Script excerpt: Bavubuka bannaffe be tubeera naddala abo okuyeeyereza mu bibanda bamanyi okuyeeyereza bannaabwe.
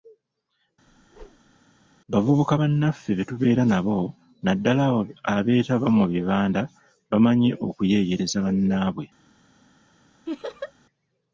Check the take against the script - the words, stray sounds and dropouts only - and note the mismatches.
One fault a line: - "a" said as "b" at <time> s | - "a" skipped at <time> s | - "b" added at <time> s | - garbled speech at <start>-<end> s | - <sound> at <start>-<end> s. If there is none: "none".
- whoosh at 0.9-1.5 s
- "nabo" added at 3.7 s
- "okuyeeyereza" said as "abeetaba" at 5.3 s
- laugh at 10.3-10.7 s